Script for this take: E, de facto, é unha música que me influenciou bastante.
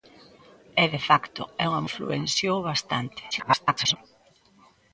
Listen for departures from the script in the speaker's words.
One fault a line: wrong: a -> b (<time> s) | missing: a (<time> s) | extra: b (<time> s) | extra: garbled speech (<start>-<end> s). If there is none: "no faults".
missing: música que me (1.9 s)
extra: garbled speech (3.3-4.0 s)